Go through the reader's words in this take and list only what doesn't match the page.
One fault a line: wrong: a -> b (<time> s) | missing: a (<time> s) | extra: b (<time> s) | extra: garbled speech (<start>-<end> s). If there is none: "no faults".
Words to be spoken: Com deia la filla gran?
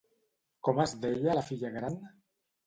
extra: es (0.8 s)